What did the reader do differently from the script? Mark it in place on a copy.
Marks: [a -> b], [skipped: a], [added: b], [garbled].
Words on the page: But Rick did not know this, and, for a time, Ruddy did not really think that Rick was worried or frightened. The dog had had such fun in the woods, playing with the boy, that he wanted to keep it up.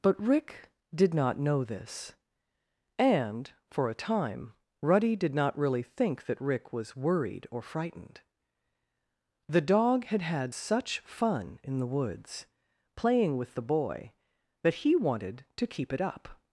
But Rick did not know this, and, for a time, Ruddy did not really think that Rick was worried or frightened. The dog had had such fun in the woods, playing with the boy, that he wanted to keep it up.